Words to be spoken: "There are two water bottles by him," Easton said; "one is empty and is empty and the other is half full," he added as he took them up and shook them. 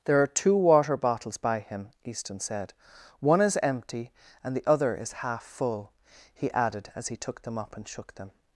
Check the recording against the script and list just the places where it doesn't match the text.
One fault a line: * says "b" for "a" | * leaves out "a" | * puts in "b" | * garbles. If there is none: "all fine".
* leaves out "is empty and"